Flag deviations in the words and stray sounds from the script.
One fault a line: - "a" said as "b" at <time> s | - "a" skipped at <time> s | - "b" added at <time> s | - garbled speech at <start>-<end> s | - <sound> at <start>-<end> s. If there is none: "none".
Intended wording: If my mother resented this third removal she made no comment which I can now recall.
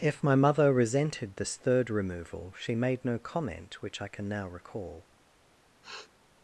- sniff at 5.8-6.1 s